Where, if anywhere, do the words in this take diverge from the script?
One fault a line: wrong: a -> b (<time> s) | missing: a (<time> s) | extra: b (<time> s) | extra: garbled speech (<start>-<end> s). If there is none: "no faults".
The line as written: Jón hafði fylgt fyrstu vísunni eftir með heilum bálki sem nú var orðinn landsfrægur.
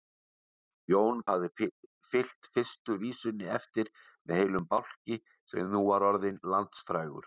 no faults